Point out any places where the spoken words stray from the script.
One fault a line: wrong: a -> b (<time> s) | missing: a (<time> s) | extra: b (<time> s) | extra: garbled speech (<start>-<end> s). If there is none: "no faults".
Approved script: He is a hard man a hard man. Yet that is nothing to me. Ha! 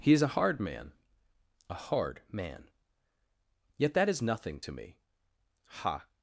no faults